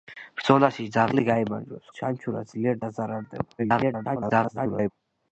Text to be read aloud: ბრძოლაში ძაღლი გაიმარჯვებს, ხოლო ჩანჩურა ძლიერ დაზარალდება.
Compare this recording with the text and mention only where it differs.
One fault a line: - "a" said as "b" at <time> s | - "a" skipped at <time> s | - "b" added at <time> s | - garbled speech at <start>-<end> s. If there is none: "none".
- "ხოლო" skipped at 1.9 s
- garbled speech at 3.6-4.9 s